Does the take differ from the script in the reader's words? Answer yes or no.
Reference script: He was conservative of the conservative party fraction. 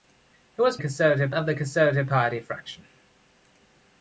no